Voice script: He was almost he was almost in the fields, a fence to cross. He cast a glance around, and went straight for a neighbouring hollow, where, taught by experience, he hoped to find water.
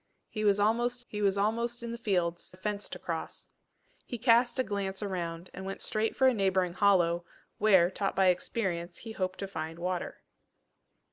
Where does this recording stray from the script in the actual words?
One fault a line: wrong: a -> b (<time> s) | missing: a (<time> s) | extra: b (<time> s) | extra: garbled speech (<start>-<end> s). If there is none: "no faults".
no faults